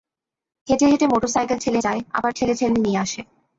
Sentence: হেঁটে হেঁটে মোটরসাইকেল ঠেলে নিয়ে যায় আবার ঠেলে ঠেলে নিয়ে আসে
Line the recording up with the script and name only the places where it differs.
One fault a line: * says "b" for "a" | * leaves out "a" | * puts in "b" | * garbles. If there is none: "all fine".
* leaves out "নিয়ে"